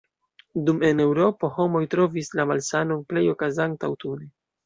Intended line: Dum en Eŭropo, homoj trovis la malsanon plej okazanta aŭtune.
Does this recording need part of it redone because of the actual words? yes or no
no